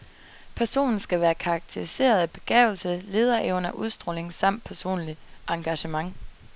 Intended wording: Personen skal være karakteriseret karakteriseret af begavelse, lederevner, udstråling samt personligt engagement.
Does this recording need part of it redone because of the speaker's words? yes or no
yes